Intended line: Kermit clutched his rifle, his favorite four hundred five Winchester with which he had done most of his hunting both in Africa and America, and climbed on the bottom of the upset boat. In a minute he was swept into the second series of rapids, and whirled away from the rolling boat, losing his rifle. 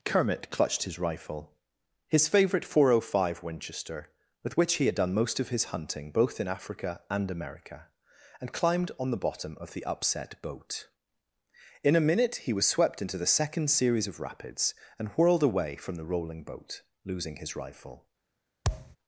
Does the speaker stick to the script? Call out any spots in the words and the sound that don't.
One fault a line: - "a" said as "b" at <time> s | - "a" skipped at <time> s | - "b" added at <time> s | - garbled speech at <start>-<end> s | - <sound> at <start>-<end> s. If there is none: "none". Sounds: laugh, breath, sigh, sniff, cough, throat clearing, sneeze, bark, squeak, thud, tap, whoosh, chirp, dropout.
- thud at 18.6-19.0 s